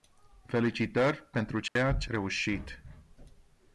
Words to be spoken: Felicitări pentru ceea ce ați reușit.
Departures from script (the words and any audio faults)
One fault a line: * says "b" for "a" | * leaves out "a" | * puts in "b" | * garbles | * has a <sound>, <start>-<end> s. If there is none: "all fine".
* has a dropout, 1.7-1.8 s
* leaves out "ați"